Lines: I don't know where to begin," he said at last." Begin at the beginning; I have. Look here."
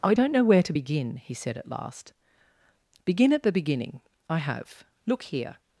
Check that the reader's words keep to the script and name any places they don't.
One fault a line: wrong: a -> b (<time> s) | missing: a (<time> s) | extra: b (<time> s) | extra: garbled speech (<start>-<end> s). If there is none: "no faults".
no faults